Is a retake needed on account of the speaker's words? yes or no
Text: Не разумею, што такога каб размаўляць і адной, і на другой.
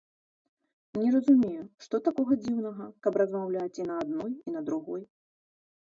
yes